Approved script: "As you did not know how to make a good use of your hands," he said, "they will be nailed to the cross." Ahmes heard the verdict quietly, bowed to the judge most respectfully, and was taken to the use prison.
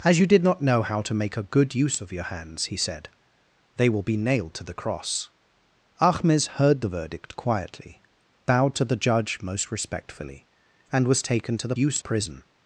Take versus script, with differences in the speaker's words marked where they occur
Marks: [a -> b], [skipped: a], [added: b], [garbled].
"As you did not know how to make a good use of your hands," he said, "they will be nailed to the cross." Ahmes heard the verdict quietly, bowed to the judge most respectfully, and was taken to the use prison.